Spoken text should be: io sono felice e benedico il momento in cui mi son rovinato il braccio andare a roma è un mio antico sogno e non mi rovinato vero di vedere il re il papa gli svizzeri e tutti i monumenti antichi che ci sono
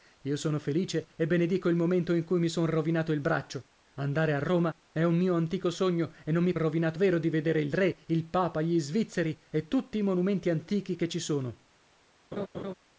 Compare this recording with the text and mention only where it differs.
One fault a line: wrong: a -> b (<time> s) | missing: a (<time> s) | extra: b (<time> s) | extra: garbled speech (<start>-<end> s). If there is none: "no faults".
no faults